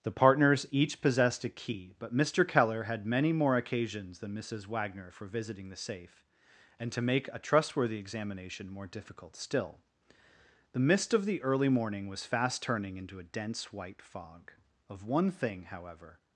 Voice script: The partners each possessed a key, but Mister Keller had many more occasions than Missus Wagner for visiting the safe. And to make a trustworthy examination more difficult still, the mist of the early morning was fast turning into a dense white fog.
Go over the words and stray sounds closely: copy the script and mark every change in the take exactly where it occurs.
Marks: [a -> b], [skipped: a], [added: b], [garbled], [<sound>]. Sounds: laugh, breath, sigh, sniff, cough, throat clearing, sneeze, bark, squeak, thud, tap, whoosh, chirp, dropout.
The partners each possessed a key, but Mister Keller had many more occasions than Missus Wagner for visiting the safe. And to make a trustworthy examination more difficult still, the mist of the early morning was fast turning into a dense white fog. [added: Of one thing however]